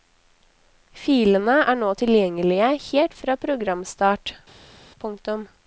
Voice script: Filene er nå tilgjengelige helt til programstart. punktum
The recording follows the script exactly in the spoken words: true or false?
false